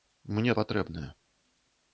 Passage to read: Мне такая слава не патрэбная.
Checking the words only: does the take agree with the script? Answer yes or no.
no